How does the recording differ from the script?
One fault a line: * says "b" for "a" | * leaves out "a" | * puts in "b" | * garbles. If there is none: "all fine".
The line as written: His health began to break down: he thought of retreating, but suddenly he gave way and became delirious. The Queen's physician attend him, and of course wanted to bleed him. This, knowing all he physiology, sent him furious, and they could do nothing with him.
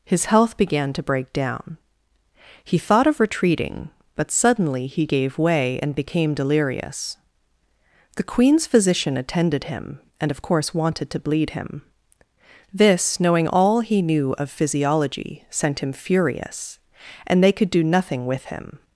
* says "attended" for "attend"
* puts in "knew of"